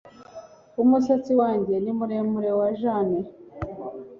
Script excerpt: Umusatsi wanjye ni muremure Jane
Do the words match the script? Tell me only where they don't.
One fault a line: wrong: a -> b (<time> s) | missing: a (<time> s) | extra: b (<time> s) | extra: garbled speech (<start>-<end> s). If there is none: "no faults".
extra: wa (2.6 s)